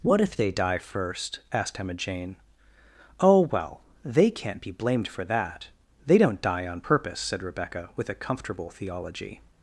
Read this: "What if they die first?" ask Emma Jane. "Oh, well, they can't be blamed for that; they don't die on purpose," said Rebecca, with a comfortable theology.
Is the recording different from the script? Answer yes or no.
yes